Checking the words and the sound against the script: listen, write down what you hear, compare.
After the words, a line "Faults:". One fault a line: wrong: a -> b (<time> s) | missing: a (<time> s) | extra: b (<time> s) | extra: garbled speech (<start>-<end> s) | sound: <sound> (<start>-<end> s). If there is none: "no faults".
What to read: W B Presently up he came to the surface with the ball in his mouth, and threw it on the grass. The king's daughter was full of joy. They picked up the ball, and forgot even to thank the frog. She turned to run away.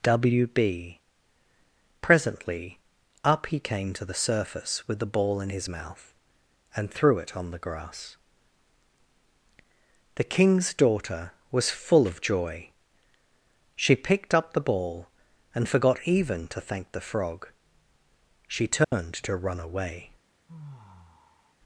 W B Presently up he came to the surface with the ball in his mouth, and threw it on the grass. The king's daughter was full of joy. She picked up the ball, and forgot even to thank the frog. She turned to run away.
Faults:
wrong: They -> She (13.7 s)
sound: dropout (18.8-18.9 s)
sound: sigh (20.5-21.5 s)